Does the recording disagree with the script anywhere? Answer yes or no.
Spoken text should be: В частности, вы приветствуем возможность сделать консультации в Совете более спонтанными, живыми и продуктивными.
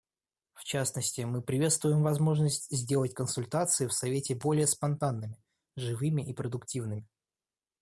yes